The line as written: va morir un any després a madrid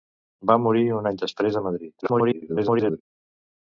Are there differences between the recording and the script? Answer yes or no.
yes